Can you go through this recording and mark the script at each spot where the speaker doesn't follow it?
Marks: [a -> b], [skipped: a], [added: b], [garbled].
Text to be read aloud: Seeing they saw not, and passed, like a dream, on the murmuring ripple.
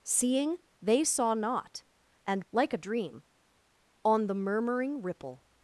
Seeing they saw not, and [skipped: passed,] like a dream, on the murmuring ripple.